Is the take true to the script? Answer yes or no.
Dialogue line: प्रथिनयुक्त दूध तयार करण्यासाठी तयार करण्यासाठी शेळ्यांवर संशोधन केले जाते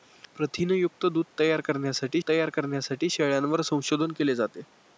yes